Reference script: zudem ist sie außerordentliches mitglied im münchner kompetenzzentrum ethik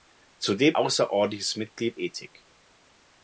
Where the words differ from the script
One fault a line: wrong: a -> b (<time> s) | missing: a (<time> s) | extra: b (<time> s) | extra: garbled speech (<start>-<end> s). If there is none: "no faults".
missing: ist sie (0.8 s)
missing: im münchner kompetenzzentrum (2.0 s)